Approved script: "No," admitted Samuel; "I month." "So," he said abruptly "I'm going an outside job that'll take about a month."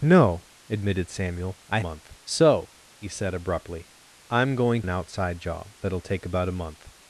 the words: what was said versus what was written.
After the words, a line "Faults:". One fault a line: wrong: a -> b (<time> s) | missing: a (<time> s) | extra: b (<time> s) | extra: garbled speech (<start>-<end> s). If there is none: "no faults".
"No," admitted Samuel; "I month." "So," he said abruptly "I'm going an outside job that'll take about a month."
Faults:
no faults